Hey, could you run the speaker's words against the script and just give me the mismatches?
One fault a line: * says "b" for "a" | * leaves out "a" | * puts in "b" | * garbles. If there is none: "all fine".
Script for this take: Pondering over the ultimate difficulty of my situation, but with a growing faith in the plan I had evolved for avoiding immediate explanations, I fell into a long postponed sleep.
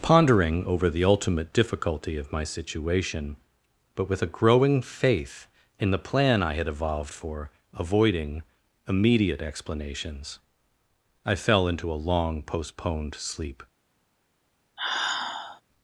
all fine